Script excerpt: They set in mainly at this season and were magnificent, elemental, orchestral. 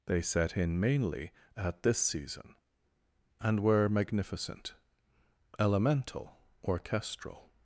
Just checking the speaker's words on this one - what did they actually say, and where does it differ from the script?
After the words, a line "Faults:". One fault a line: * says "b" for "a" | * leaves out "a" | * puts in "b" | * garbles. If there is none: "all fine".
They set in mainly at this season and were magnificent, elemental, orchestral.
Faults:
all fine